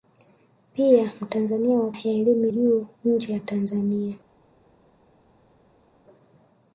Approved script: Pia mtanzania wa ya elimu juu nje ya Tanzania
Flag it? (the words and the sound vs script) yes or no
no